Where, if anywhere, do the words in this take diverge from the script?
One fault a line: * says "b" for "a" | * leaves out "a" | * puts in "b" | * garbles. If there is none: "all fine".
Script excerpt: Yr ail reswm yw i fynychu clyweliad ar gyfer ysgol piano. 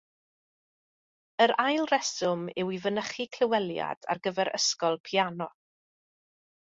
all fine